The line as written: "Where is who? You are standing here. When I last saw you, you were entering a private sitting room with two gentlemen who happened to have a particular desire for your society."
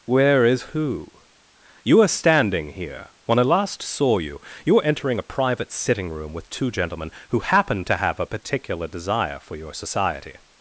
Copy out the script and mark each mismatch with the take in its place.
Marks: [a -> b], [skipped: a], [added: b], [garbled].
"Where is who? You are standing here. When I last saw you, you were entering a private sitting room with two gentlemen who happened to have a particular desire for your society."